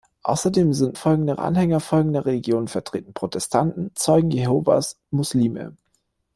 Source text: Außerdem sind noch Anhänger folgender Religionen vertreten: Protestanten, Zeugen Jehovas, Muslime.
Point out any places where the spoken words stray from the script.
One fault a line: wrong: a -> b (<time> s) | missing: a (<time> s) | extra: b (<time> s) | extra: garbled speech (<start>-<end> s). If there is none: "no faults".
wrong: noch -> folgender (0.9 s)